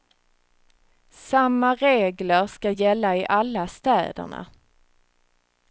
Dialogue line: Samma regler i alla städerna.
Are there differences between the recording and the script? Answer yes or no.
yes